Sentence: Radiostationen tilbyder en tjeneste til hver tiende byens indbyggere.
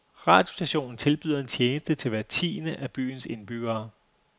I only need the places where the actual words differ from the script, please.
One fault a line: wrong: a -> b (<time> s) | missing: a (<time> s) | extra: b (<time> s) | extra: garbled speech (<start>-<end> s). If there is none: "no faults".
extra: af (2.8 s)